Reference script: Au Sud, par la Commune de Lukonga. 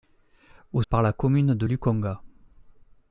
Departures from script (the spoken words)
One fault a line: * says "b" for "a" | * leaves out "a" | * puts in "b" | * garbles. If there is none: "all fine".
* leaves out "Sud"